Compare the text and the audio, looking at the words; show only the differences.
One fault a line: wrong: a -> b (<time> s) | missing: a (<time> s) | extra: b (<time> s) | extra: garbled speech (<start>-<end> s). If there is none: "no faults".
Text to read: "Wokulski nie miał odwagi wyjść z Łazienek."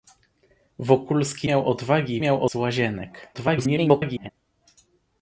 missing: nie (1.5 s)
wrong: wyjść -> miał (2.2 s)
extra: garbled speech (3.3-4.3 s)